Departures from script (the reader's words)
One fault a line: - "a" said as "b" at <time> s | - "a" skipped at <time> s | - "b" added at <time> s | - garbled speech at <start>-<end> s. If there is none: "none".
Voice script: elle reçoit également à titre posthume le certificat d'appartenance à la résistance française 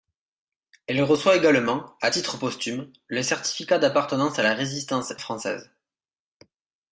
none